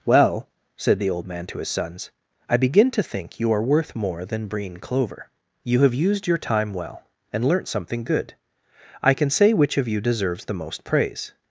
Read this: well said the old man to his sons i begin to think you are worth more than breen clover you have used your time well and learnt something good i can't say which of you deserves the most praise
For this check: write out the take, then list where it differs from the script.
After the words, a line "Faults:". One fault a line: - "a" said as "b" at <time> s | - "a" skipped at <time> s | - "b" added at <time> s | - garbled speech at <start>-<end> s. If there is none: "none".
well said the old man to his sons i begin to think you are worth more than breen clover you have used your time well and learnt something good i can say which of you deserves the most praise
Faults:
- "can't" said as "can" at 9.1 s